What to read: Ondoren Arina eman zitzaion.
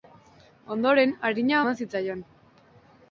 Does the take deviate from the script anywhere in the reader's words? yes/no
no